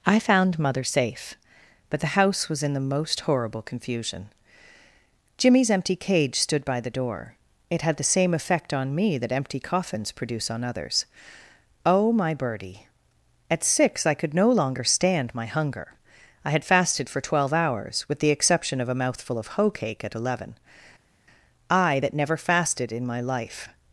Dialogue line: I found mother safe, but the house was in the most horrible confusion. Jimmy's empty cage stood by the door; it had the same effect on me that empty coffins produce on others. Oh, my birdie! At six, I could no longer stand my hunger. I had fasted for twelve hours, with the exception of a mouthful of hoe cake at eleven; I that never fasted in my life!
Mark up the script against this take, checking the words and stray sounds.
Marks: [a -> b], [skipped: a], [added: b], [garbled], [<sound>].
I found mother safe, but the house was in the most horrible confusion. Jimmy's empty cage stood by the door; it had the same effect on me that empty coffins produce on others. Oh, my birdie! At six, I could no longer stand my hunger. I had fasted for twelve hours, with the exception of a mouthful of hoe cake at eleven; I that never fasted in my life!